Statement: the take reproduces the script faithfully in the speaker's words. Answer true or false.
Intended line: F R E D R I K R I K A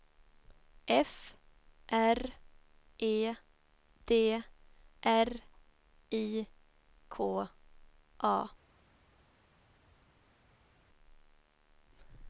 false